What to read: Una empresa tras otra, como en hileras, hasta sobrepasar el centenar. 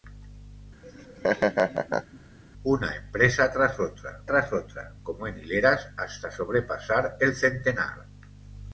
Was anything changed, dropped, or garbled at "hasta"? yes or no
no